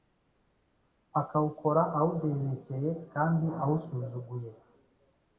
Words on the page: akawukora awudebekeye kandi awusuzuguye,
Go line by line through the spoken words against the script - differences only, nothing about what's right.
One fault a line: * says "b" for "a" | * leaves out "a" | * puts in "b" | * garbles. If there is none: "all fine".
all fine